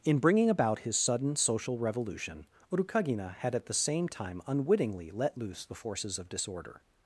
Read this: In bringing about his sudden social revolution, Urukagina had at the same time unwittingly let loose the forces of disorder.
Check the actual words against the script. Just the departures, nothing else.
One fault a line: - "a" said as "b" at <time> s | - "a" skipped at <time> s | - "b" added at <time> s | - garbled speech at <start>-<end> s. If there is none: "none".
none